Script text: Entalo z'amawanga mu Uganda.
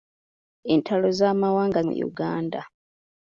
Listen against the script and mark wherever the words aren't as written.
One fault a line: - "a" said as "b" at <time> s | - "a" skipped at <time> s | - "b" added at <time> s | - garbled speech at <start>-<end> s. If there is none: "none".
none